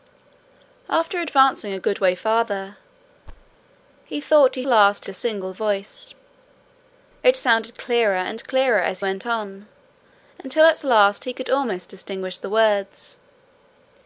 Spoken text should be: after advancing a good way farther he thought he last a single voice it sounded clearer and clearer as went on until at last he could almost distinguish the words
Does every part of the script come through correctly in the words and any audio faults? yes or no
no